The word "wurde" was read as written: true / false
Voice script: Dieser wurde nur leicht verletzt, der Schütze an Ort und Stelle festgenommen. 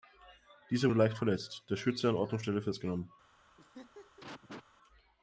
false